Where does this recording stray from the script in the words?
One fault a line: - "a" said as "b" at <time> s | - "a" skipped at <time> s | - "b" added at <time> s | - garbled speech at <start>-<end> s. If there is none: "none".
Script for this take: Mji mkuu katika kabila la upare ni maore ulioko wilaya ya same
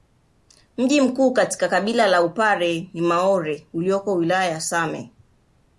none